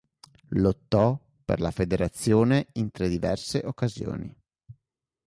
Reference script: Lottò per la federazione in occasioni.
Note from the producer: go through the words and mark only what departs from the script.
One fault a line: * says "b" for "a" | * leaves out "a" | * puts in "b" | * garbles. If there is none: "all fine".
* puts in "tre diverse"